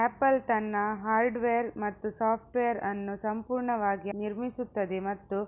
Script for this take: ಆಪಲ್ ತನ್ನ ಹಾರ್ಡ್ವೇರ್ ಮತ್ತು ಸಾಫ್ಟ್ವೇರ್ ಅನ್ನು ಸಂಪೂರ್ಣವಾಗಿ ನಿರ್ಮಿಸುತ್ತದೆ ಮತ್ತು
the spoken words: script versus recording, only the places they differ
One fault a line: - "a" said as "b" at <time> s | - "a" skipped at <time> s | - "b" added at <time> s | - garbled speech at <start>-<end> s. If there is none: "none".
none